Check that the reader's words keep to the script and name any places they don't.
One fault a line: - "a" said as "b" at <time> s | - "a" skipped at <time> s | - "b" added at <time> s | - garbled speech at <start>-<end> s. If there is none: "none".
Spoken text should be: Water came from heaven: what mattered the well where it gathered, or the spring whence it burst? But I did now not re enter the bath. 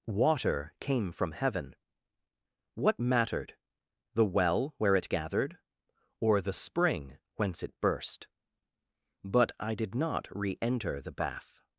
- "now" skipped at 9.9 s